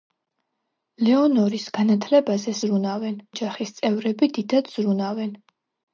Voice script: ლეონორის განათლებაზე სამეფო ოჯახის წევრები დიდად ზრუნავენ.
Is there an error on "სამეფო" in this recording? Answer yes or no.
yes